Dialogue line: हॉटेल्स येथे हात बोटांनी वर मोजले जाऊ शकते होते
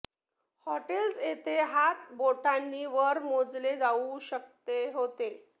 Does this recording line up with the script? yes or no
yes